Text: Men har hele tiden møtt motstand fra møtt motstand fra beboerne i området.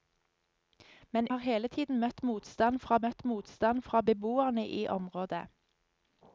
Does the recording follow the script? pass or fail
pass